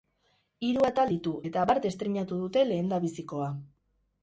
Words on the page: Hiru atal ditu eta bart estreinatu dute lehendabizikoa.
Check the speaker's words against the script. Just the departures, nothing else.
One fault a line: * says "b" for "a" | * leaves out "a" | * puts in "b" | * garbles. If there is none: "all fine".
all fine